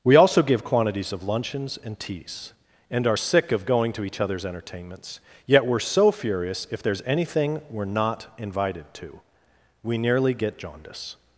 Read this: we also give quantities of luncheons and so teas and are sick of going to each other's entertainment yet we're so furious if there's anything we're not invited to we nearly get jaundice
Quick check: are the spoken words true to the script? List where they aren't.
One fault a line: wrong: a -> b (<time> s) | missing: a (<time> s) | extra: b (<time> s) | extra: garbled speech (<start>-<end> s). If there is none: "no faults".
missing: so (2.0 s)
wrong: entertainment -> entertainments (4.4 s)